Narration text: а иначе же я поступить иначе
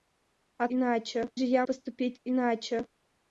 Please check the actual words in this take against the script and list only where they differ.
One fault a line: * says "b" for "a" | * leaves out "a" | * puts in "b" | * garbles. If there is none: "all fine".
all fine